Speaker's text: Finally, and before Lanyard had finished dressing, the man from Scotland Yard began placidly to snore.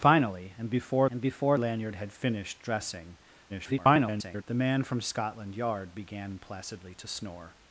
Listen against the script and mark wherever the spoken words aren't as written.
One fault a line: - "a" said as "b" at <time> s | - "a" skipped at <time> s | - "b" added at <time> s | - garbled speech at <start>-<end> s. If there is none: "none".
- "and before" added at 1.1 s
- garbled speech at 3.5-4.4 s